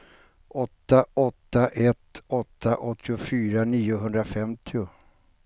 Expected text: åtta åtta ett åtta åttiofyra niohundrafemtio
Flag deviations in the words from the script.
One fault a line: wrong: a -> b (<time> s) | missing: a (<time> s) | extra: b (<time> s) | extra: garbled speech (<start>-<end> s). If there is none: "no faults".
no faults